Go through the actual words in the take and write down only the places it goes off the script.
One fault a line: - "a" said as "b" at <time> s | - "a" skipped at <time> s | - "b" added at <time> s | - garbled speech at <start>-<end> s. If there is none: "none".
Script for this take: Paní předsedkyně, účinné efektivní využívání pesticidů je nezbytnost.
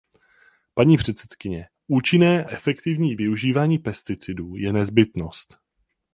none